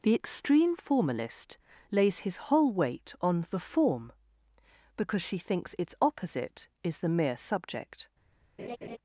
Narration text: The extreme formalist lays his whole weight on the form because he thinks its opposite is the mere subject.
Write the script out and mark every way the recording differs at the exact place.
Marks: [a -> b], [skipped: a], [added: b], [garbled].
The extreme formalist lays his whole weight on the form because [he -> she] thinks its opposite is the mere subject.